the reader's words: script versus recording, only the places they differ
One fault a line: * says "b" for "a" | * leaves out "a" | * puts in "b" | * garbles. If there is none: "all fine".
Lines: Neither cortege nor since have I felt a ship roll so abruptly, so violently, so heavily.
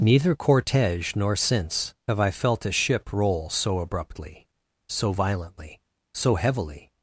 all fine